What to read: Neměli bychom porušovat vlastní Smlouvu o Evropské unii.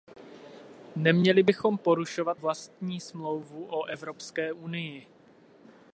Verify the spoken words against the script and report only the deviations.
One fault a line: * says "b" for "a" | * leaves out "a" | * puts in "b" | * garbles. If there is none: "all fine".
all fine